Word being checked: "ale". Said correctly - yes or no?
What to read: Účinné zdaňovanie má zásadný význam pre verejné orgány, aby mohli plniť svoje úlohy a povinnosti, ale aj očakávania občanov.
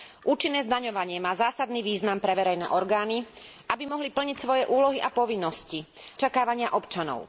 no